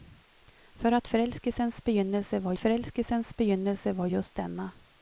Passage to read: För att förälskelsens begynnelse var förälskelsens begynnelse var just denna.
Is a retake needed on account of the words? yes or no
no